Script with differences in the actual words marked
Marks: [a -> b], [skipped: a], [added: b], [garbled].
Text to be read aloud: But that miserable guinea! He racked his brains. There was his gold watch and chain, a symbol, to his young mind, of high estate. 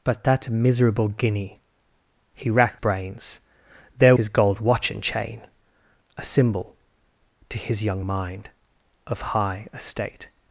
But that miserable guinea! He racked [skipped: his] brains. There [skipped: was] his gold watch and chain, a symbol, to his young mind, of high estate.